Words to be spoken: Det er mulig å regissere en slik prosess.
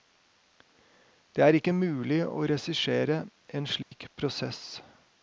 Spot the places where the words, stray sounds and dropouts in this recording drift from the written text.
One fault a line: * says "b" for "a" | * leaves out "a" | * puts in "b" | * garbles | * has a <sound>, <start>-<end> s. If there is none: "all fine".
* puts in "ikke"
* has a dropout, 3.8-3.9 s